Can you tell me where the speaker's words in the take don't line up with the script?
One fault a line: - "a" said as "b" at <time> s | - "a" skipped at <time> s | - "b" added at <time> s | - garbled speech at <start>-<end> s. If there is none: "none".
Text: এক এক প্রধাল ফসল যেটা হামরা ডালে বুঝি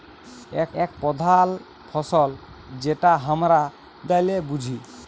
none